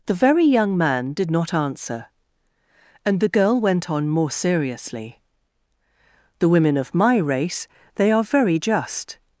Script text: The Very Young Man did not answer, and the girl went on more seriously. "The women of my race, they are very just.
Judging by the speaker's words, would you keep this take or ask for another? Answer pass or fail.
pass